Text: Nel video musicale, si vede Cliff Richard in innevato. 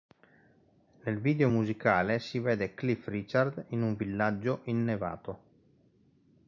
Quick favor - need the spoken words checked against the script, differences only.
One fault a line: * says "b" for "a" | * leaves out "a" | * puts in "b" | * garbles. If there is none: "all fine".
* puts in "un villaggio"